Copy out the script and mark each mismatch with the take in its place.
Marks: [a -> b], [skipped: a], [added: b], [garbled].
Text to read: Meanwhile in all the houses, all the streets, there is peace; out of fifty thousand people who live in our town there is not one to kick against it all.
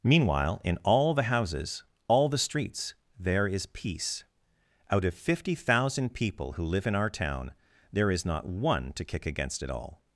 Meanwhile in all the houses, all the streets, there is peace; out of fifty thousand people who live in our town there is not one to kick against it all.